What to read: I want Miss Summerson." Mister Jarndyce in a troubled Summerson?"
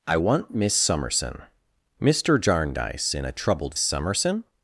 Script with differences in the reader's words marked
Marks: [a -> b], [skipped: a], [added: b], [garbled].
I want Miss Summerson." Mister Jarndyce in a troubled Summerson?"